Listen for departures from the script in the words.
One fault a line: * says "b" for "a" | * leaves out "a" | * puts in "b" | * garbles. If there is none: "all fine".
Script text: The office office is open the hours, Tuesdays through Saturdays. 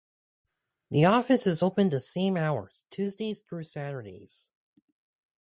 * leaves out "office"
* puts in "same"